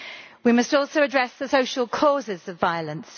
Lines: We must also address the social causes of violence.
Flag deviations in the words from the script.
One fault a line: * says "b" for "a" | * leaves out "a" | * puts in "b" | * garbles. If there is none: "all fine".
all fine